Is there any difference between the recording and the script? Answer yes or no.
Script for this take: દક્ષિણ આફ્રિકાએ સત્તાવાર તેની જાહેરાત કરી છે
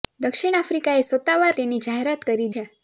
no